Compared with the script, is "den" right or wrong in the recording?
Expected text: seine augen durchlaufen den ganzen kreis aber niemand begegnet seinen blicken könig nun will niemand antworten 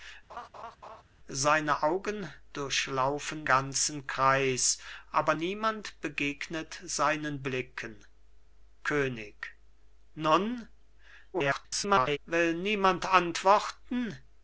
wrong